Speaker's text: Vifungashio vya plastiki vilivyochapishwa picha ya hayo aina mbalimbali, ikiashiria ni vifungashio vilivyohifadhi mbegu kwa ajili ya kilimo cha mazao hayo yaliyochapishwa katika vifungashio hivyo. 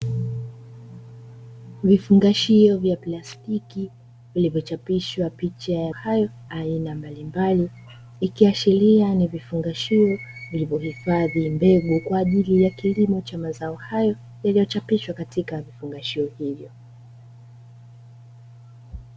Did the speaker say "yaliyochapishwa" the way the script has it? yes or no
yes